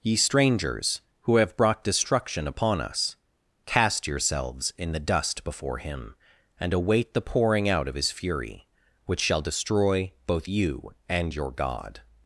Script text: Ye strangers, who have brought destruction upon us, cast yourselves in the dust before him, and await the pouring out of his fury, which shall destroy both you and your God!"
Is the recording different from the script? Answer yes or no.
no